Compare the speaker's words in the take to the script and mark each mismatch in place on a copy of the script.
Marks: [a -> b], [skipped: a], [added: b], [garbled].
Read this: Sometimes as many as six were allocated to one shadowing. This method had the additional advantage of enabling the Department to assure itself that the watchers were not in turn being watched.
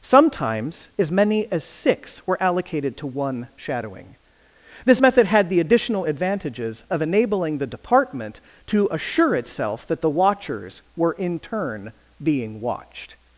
Sometimes as many as six were allocated to one shadowing. This method had the additional [advantage -> advantages] of enabling the Department to assure itself that the watchers were [skipped: not] in turn being watched.